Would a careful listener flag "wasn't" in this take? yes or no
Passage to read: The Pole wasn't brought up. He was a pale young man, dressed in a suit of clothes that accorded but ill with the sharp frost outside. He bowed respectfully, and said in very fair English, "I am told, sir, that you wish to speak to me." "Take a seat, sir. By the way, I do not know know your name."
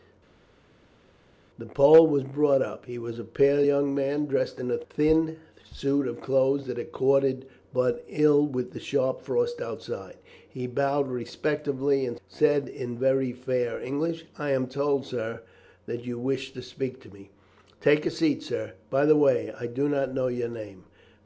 yes